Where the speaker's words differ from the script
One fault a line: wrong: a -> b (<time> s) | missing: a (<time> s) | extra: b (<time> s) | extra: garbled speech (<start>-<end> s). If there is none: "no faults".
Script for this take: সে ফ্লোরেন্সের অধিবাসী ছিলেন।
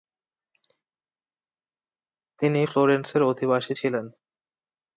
wrong: সে -> তিনি (2.4 s)